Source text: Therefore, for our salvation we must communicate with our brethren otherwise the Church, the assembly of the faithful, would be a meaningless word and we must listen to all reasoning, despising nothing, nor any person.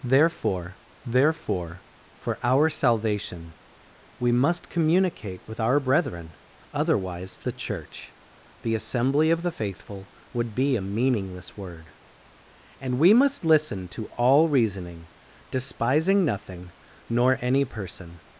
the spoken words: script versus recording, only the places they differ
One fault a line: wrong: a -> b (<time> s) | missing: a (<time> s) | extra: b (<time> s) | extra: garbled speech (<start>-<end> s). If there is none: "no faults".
extra: therefore (1.1 s)